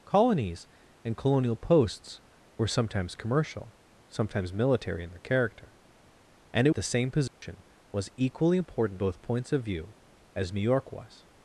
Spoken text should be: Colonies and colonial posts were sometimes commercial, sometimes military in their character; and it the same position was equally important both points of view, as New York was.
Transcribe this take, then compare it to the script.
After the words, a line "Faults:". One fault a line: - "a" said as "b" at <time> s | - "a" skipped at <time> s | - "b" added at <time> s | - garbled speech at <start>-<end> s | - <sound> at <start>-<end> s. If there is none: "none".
Colonies and colonial posts were sometimes commercial, sometimes military in their character; and it the same position was equally important both points of view, as New York was.
Faults:
- dropout at 7.3-7.4 s